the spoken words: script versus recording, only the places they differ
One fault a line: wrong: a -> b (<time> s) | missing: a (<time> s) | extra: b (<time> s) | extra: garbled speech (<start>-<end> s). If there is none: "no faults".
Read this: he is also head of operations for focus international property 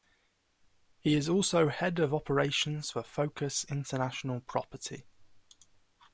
no faults